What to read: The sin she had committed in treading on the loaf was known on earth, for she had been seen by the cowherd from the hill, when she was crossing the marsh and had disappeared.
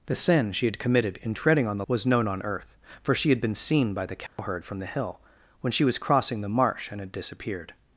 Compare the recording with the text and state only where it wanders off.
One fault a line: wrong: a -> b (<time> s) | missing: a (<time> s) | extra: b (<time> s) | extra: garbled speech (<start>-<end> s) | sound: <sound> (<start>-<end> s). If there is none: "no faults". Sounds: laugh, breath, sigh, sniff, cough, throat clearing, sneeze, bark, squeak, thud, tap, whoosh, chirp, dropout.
missing: loaf (1.9 s)
sound: dropout (4.3-4.4 s)